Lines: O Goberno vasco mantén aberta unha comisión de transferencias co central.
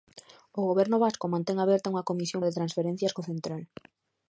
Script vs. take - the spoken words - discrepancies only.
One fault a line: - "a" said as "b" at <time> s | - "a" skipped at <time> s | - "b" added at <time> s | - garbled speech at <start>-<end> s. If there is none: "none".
none